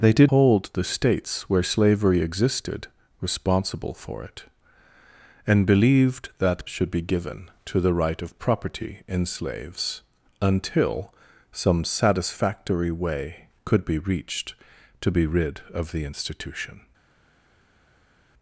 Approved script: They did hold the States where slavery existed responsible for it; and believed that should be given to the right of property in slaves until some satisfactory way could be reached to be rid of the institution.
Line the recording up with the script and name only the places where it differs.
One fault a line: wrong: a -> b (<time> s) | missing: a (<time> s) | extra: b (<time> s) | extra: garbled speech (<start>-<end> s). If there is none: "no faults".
no faults